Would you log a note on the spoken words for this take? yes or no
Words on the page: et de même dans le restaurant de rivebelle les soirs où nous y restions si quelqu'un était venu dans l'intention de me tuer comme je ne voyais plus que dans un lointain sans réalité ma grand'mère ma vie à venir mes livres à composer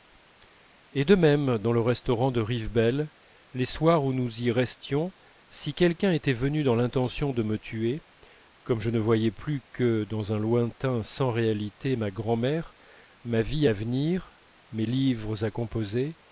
no